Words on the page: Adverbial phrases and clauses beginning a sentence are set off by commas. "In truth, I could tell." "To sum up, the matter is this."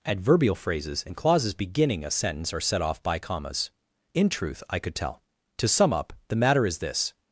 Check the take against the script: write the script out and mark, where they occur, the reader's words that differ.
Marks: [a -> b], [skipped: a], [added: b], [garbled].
Adverbial phrases and clauses beginning a sentence are set off by commas. "In truth, I could tell." "To sum up, the matter is this."